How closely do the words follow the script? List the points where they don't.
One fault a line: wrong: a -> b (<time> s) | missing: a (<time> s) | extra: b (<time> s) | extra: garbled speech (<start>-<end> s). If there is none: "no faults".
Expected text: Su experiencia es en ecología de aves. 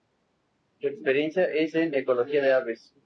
no faults